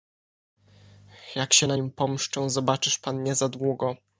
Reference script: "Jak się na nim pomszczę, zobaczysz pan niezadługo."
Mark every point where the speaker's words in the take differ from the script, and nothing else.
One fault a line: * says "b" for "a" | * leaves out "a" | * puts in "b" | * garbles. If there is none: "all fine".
all fine